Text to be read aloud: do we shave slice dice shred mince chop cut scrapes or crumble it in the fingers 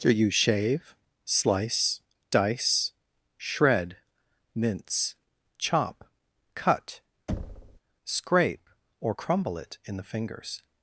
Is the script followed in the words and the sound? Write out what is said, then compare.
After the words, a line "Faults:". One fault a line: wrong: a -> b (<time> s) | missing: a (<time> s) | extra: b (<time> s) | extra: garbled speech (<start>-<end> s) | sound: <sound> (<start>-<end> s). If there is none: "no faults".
do you shave slice dice shred mince chop cut scrape or crumble it in the fingers
Faults:
wrong: we -> you (0.1 s)
sound: thud (7.3-7.8 s)
wrong: scrapes -> scrape (8.1 s)